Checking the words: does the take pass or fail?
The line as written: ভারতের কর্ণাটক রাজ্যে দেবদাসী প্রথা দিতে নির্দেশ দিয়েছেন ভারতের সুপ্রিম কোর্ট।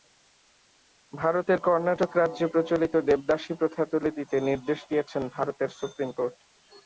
fail